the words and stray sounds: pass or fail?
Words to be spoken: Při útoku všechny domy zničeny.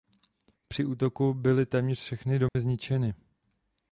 fail